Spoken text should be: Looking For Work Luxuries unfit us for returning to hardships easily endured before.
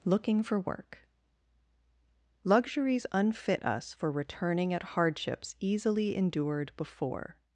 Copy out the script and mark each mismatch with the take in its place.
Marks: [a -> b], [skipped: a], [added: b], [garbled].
Looking For Work Luxuries unfit us for returning [to -> at] hardships easily endured before.